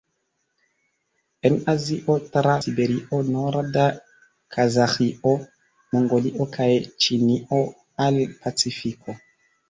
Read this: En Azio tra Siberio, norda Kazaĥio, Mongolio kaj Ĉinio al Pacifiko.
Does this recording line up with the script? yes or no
yes